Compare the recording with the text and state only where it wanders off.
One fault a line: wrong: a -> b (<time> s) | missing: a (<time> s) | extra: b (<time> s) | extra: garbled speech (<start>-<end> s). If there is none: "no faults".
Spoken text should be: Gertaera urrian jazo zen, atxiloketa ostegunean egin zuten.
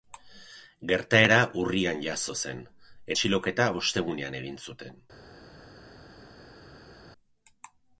no faults